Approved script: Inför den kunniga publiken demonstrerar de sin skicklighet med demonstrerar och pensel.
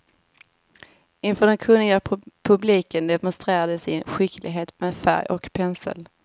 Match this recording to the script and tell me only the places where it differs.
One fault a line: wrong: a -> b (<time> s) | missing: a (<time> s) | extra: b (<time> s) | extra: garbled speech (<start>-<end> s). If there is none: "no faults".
wrong: demonstrerar -> färg (5.0 s)